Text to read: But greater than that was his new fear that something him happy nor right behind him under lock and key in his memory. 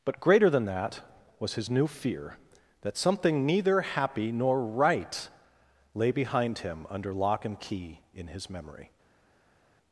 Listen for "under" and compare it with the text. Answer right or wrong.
right